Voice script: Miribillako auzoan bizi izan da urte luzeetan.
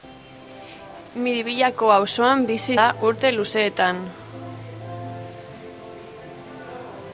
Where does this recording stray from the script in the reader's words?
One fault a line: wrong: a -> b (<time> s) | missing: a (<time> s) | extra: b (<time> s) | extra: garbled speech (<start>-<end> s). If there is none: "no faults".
missing: izan (2.7 s)